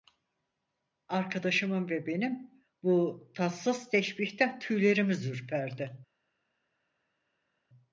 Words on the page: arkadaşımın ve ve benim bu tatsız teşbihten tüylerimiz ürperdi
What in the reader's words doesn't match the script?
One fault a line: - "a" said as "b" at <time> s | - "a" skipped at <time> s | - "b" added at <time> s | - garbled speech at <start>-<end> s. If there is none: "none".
- "ve" skipped at 2.1 s